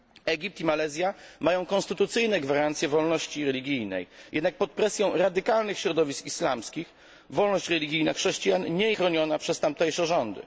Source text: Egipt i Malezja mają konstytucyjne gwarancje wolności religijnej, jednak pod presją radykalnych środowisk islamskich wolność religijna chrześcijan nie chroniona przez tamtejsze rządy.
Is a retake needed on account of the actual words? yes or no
no